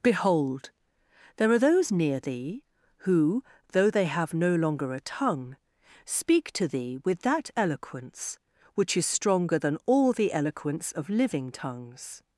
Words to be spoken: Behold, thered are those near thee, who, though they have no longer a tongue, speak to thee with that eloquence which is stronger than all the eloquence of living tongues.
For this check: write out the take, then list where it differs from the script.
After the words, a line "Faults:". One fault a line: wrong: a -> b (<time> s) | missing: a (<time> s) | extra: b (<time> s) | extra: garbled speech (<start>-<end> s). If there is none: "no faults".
Behold, there are those near thee, who, though they have no longer a tongue, speak to thee with that eloquence which is stronger than all the eloquence of living tongues.
Faults:
wrong: thered -> there (1.4 s)